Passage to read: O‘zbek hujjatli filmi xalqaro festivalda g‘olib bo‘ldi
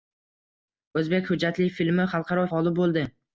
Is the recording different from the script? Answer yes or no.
yes